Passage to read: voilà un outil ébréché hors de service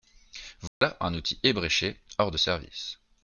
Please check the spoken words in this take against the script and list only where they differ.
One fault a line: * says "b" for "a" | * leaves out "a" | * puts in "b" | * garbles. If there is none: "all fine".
all fine